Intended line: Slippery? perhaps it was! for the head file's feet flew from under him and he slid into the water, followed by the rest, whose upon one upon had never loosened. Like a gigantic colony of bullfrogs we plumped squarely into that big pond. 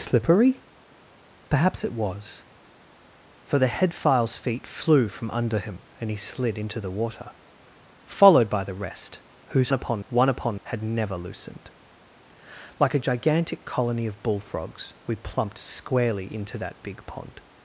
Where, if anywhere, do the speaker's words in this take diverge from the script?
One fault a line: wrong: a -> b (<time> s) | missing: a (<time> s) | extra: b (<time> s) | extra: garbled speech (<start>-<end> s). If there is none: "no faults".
no faults